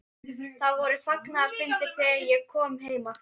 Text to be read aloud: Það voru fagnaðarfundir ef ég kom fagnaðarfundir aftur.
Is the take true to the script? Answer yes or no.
no